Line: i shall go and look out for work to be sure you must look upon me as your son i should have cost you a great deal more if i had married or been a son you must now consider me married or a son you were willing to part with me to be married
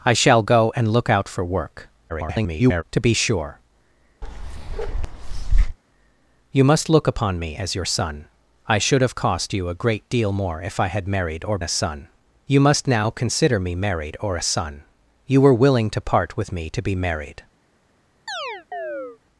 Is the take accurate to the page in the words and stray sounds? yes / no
no